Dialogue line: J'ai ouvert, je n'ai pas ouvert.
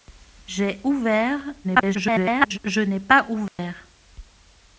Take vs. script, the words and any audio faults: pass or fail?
fail